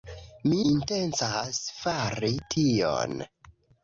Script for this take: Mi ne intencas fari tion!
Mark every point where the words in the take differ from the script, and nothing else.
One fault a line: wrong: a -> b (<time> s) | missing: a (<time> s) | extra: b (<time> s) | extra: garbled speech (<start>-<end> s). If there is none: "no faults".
missing: ne (0.6 s)